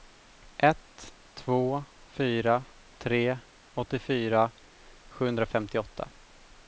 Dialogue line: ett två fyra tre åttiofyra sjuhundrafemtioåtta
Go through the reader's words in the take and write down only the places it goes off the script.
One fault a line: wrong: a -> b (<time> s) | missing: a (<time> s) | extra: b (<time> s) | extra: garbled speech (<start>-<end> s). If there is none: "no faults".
no faults